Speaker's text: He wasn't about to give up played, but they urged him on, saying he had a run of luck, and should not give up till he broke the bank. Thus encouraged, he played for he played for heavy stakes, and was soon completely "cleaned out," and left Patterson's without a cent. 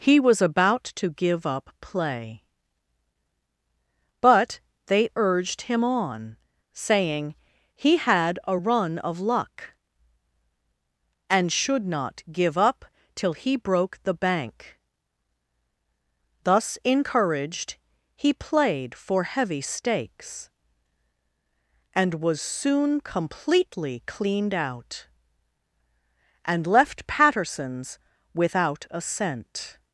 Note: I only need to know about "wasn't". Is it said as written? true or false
false